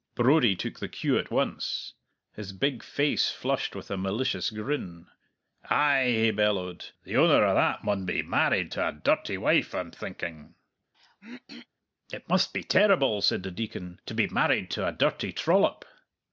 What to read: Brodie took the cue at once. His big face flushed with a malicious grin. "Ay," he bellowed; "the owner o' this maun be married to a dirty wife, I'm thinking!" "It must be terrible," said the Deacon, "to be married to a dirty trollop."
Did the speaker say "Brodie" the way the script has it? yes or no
yes